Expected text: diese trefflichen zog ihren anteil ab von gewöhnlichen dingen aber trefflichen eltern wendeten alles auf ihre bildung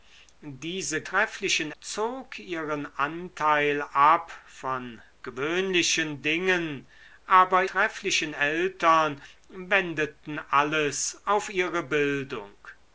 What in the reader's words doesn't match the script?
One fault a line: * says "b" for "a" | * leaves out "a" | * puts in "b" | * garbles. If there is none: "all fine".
all fine